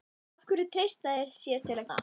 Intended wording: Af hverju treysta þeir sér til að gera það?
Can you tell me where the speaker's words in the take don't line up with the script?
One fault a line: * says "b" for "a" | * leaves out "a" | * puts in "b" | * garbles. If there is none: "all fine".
* leaves out "gera"